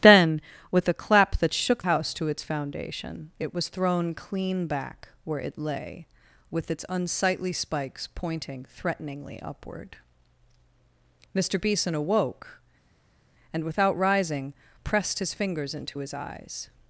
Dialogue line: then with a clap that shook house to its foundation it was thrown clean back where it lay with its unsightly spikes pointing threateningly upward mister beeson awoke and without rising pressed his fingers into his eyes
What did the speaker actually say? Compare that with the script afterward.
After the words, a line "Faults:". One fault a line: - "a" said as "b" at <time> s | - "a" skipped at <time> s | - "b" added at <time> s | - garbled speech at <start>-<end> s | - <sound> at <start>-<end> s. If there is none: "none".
then with a clap that shook house to its foundation it was thrown clean back where it lay with its unsightly spikes pointing threateningly upward mister beeson awoke and without rising pressed his fingers into his eyes
Faults:
none